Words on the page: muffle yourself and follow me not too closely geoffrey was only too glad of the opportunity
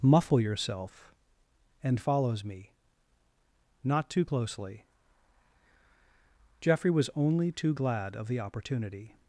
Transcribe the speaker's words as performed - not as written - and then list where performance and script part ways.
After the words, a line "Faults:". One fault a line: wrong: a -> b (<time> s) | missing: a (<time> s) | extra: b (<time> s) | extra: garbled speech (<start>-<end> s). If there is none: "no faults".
muffle yourself and follows me not too closely geoffrey was only too glad of the opportunity
Faults:
wrong: follow -> follows (2.0 s)